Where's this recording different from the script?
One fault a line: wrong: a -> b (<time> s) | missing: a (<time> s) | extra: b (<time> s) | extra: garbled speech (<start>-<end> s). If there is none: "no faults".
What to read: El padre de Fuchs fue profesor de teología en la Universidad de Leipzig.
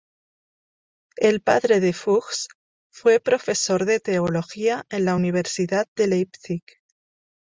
no faults